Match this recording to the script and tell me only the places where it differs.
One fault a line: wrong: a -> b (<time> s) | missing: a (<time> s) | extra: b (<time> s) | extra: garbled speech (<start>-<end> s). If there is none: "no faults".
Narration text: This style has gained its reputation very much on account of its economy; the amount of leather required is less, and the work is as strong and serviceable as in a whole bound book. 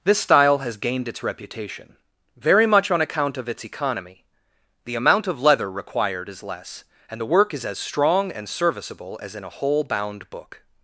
no faults